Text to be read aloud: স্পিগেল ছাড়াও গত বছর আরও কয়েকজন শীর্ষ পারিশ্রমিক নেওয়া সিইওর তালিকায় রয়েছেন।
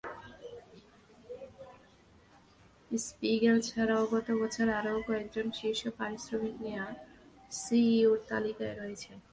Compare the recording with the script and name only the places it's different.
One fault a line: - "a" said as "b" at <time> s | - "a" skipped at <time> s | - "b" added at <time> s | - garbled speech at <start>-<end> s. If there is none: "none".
none